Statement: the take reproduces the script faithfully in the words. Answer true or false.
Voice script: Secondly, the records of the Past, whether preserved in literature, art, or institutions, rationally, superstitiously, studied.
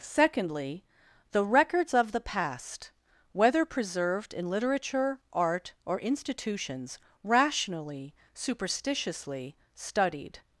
true